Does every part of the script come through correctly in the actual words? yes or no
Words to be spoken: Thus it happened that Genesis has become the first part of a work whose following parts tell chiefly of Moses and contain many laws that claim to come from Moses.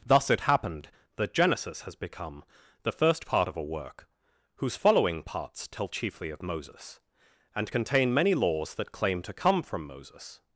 yes